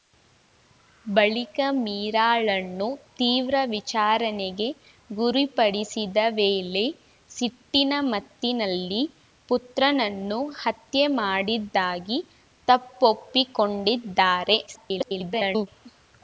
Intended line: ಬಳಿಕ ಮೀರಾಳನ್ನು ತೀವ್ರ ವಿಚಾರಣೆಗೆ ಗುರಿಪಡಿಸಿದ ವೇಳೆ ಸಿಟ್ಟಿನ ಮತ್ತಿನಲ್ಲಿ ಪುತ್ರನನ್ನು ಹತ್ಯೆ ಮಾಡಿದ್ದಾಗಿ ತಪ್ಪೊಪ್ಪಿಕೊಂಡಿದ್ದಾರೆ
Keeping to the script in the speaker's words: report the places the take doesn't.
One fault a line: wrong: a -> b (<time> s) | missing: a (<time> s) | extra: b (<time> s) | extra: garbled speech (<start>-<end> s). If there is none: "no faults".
extra: garbled speech (14.7-15.7 s)